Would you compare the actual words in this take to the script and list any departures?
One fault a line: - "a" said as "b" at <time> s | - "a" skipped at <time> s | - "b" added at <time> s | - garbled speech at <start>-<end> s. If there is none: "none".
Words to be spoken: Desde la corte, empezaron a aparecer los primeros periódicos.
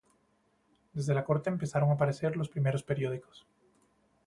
none